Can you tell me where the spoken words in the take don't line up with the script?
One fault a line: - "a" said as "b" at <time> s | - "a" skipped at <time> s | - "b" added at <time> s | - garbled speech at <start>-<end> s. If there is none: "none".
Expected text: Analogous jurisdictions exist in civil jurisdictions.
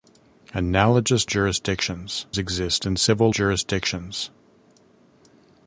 none